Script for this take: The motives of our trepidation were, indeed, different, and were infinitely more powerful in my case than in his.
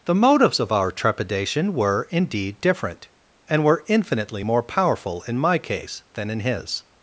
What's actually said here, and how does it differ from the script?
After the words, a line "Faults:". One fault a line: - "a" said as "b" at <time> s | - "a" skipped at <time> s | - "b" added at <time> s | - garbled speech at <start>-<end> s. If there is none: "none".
The motives of our trepidation were, indeed, different, and were infinitely more powerful in my case than in his.
Faults:
none